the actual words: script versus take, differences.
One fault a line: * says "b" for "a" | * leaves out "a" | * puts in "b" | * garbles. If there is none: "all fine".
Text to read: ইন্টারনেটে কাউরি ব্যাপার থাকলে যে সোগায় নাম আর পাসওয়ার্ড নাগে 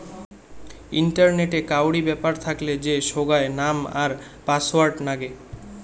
all fine